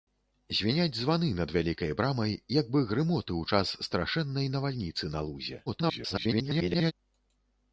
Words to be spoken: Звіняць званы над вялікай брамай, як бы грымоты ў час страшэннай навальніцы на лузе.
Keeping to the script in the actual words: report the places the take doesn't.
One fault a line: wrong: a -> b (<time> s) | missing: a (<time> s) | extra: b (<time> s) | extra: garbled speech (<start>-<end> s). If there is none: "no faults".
extra: garbled speech (5.7-6.9 s)